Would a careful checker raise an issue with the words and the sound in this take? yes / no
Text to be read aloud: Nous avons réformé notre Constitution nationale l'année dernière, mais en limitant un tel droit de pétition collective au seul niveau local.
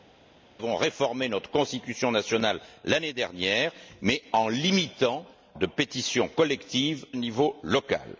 yes